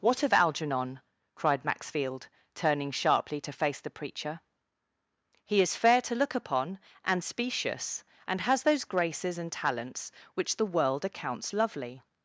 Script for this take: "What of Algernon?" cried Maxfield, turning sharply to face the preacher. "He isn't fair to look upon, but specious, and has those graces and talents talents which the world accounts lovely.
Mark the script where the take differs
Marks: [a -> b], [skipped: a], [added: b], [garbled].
"What of Algernon?" cried Maxfield, turning sharply to face the preacher. "He [isn't -> is] fair to look upon, [but -> and] specious, and has those graces and talents [skipped: talents] which the world accounts lovely.